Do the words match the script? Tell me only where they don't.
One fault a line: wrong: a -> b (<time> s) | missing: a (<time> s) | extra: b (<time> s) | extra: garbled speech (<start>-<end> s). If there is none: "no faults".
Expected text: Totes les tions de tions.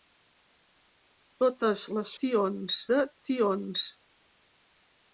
no faults